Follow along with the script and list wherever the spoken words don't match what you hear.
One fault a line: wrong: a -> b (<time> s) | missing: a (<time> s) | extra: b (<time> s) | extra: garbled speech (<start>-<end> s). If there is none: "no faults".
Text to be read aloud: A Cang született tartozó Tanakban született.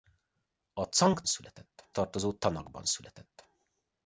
no faults